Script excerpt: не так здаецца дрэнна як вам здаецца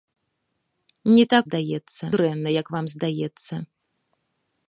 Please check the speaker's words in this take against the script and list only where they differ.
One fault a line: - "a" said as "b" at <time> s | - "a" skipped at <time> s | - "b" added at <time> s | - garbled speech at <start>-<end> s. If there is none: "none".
none